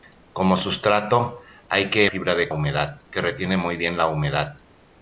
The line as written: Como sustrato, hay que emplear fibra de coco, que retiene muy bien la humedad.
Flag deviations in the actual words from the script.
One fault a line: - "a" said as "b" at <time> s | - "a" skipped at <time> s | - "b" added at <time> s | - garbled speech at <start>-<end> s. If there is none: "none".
- "emplear" skipped at 2.1 s
- "coco" said as "humedad" at 2.5 s